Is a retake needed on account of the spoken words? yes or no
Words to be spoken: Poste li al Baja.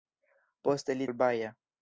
no